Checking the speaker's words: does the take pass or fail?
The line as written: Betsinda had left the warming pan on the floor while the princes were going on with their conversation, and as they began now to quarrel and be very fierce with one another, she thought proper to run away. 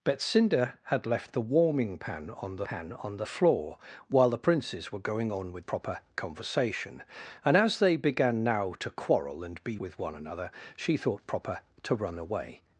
fail